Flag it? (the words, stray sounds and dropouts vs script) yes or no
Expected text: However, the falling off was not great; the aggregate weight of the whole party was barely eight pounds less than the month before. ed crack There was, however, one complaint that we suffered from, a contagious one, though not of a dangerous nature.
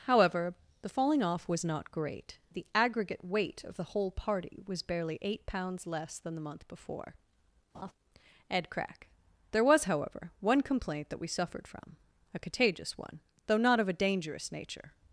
yes